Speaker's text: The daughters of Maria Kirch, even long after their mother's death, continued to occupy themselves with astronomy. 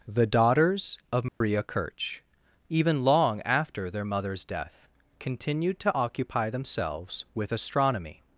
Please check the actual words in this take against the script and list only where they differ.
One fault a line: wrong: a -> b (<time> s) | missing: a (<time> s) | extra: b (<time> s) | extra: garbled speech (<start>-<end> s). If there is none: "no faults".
no faults